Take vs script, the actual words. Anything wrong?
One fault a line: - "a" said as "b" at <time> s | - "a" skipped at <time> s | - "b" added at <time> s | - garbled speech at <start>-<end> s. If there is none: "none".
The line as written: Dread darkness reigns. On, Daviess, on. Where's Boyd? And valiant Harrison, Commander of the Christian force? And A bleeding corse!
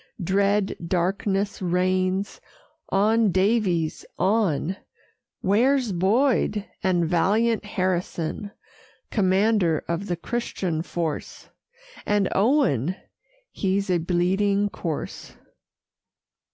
- "Owen He's" added at 12.3 s